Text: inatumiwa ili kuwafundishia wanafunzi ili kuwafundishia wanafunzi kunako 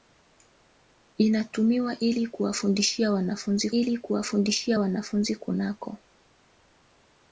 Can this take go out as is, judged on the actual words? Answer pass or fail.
pass